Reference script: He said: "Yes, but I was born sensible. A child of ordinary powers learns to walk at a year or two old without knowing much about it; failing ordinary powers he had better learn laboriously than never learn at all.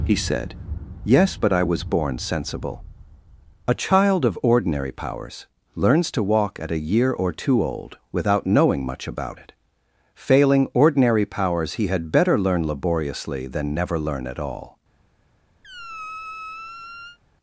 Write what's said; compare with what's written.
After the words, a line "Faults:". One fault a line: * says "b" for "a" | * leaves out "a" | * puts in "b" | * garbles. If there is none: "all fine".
He said: "Yes, but I was born sensible. A child of ordinary powers learns to walk at a year or two old without knowing much about it; failing ordinary powers he had better learn laboriously than never learn at all.
Faults:
all fine